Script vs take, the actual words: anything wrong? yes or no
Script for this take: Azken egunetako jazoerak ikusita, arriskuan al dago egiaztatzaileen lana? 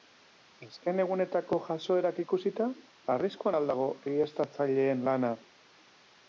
no